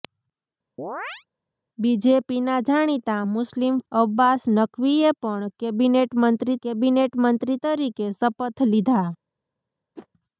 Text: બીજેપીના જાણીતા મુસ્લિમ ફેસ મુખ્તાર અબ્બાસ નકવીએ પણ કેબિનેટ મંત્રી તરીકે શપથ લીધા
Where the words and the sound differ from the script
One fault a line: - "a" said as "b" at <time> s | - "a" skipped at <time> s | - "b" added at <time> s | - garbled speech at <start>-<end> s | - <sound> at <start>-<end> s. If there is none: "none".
- chirp at 0.8-1.3 s
- "ફેસ મુખ્તાર" skipped at 3.8 s
- "કેબિનેટ મંત્રી" added at 6.6 s
- whoosh at 10.0-10.1 s